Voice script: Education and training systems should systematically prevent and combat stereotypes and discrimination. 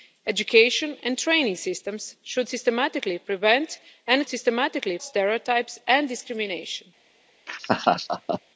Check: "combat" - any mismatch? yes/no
yes